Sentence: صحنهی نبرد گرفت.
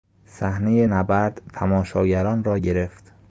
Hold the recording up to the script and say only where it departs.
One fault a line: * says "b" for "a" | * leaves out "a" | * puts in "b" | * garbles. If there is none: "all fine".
* puts in "تماشاگران را"